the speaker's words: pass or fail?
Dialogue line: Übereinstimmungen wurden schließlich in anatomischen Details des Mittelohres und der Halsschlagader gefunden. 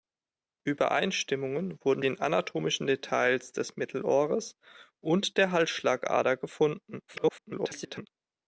fail